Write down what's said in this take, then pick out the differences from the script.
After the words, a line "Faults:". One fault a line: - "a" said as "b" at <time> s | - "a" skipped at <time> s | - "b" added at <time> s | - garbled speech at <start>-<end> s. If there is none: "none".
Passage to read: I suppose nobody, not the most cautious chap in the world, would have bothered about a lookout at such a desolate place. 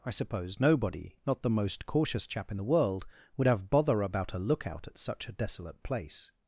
I suppose nobody, not the most cautious chap in the world, would have bother about a lookout at such a desolate place.
Faults:
- "bothered" said as "bother" at 3.7 s